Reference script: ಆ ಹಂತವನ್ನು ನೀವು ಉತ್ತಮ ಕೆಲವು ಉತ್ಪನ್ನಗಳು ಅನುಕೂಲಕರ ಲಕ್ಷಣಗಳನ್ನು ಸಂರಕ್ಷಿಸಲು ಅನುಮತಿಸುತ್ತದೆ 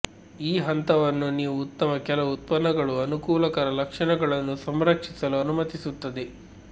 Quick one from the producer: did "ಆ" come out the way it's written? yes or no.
no